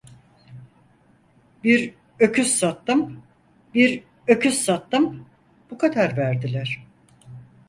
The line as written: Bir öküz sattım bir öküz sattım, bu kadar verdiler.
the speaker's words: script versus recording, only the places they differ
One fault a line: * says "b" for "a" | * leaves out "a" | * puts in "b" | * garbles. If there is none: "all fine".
all fine